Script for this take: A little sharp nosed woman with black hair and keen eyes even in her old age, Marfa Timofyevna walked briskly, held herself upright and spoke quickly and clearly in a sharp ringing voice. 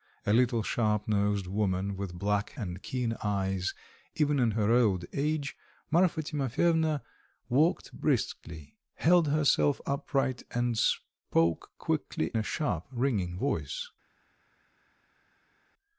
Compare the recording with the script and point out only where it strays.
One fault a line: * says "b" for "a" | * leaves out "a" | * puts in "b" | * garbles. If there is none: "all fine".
* leaves out "hair"
* leaves out "and clearly in"